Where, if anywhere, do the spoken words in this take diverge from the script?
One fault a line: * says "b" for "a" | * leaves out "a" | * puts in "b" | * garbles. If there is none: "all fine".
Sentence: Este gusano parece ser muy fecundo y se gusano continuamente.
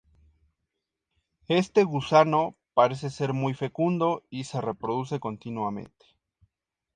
* says "reproduce" for "gusano"